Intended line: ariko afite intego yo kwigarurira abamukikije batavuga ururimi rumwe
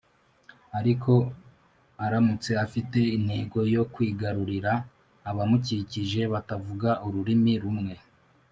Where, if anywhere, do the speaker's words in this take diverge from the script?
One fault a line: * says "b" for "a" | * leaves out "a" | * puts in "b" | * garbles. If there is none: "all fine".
* puts in "aramutse"